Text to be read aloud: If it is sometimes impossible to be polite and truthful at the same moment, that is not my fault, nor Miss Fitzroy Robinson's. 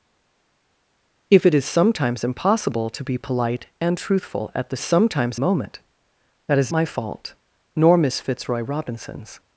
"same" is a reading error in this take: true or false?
true